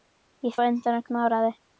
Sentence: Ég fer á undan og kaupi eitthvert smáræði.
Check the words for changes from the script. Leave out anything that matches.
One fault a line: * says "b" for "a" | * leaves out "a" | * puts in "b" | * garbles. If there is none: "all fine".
* leaves out "fer"
* leaves out "kaupi eitthvert"